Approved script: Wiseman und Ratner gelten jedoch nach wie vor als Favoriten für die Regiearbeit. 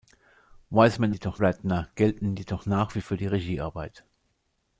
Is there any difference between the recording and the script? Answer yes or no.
yes